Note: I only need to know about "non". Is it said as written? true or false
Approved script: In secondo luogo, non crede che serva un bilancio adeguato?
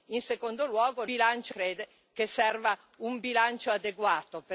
false